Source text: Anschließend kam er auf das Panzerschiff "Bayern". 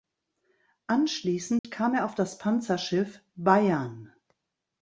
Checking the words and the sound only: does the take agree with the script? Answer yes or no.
no